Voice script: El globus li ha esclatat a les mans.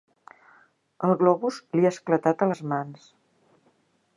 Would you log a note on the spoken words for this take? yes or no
no